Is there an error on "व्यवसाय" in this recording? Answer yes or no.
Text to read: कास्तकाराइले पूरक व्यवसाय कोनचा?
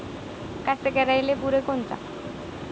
yes